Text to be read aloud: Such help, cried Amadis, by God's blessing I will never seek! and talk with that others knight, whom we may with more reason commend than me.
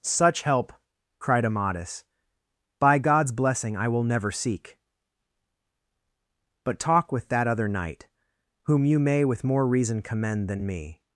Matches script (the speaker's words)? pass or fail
fail